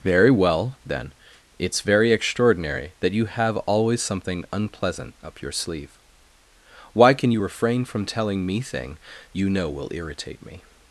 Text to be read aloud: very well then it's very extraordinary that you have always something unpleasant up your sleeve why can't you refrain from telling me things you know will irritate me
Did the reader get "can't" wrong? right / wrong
wrong